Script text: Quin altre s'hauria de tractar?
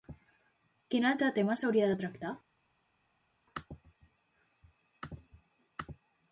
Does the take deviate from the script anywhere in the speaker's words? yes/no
yes